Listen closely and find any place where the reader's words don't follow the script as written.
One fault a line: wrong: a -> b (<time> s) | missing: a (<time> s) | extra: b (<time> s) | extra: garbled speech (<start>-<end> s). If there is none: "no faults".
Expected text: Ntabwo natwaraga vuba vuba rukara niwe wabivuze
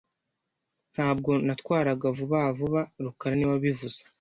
no faults